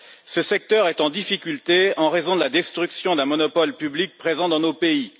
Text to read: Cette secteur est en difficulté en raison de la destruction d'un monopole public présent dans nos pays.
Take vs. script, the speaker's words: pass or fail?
fail